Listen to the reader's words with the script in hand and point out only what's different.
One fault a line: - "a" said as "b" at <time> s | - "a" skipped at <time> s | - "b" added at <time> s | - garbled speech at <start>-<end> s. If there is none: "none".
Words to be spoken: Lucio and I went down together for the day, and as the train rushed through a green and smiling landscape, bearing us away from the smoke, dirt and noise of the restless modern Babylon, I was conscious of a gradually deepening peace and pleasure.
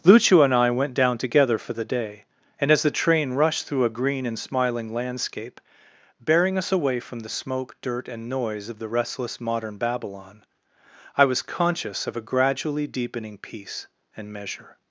- "pleasure" said as "measure" at 14.3 s